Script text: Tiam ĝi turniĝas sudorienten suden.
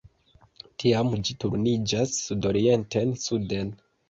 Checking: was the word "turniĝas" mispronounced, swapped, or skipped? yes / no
no